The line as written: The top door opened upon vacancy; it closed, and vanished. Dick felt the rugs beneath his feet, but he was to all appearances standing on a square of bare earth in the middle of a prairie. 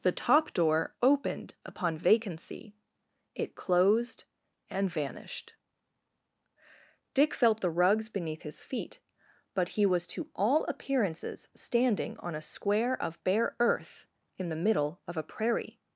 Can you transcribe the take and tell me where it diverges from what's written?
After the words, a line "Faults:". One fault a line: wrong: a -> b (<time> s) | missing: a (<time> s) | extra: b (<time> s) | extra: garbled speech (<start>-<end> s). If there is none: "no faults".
The top door opened upon vacancy; it closed, and vanished. Dick felt the rugs beneath his feet, but he was to all appearances standing on a square of bare earth in the middle of a prairie.
Faults:
no faults